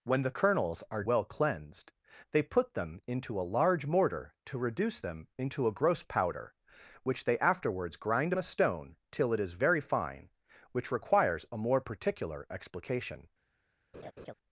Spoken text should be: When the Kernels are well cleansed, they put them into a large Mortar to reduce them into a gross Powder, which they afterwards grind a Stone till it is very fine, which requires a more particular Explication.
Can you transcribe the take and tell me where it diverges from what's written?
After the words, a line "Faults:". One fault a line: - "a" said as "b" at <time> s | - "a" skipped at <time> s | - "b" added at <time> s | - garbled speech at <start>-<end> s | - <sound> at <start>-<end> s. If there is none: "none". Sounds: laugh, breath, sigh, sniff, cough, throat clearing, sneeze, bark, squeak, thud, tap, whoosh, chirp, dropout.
When the Kernels are well cleansed, they put them into a large Mortar to reduce them into a gross Powder, which they afterwards grind a Stone till it is very fine, which requires a more particular Explication.
Faults:
- laugh at 13.9-14.3 s